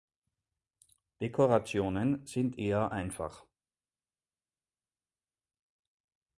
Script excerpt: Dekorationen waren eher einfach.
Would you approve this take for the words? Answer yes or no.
no